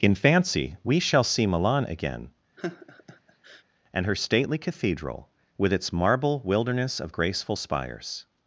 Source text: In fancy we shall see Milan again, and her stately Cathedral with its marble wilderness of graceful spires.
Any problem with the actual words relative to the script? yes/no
no